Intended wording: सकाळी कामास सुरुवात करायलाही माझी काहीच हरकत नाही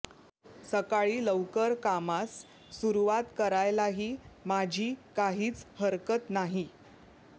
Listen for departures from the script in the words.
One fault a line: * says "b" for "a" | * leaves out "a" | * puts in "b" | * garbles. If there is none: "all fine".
* puts in "लवकर"